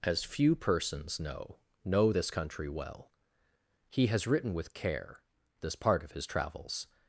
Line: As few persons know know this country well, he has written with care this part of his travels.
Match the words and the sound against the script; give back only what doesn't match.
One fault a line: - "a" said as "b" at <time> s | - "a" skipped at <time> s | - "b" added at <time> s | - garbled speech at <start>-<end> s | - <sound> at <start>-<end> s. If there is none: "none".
none